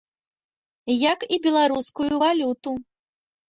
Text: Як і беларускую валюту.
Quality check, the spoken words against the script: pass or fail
pass